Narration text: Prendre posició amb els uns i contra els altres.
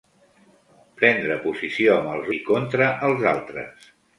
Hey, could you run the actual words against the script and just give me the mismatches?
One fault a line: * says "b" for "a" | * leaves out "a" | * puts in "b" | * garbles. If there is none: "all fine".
* leaves out "uns"